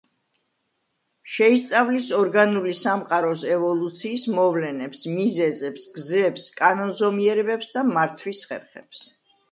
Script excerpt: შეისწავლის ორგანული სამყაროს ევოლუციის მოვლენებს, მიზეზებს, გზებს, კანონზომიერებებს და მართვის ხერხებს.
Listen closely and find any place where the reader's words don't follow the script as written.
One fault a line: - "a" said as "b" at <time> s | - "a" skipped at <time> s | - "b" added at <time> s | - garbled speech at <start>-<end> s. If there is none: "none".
none